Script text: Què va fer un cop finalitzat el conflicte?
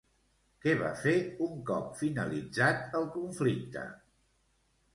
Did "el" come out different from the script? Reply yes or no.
no